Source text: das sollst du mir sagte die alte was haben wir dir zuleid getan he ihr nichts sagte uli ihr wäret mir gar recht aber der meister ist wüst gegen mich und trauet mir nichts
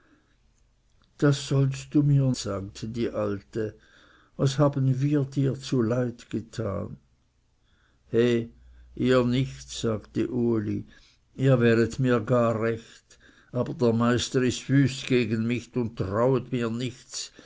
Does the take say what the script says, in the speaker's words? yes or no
yes